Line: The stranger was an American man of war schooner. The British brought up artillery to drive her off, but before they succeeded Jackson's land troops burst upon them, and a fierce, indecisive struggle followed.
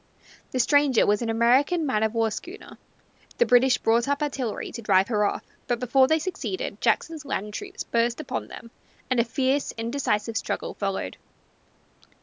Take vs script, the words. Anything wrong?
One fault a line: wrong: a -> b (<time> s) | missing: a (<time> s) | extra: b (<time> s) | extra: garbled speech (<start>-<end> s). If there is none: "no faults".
no faults